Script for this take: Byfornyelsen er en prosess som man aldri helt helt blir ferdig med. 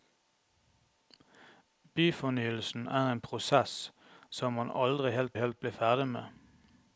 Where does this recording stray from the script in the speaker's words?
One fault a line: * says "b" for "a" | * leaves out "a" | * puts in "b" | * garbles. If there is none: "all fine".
all fine